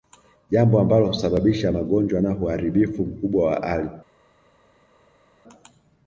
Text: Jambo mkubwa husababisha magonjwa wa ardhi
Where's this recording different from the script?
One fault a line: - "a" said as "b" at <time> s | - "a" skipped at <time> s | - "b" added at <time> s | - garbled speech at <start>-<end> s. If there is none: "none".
- "mkubwa" said as "ambalo" at 0.8 s
- "na uharibifu mkubwa" added at 2.2 s